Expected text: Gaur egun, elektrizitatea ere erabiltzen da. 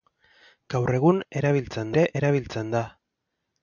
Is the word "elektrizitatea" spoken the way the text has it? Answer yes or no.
no